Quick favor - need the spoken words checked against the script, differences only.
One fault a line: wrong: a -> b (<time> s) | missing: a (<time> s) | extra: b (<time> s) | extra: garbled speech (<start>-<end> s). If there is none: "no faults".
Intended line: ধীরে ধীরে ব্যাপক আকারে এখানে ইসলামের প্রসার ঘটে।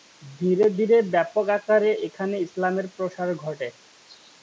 no faults